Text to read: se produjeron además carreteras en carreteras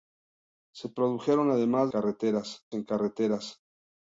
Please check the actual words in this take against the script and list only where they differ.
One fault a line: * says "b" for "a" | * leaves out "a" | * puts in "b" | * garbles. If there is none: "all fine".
all fine